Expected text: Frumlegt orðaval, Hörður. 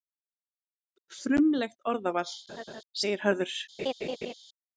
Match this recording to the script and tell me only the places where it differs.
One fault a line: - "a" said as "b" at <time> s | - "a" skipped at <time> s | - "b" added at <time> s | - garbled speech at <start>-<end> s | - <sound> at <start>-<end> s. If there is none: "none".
- laugh at 2.5-2.8 s
- "segir" added at 3.0 s
- laugh at 3.8-4.3 s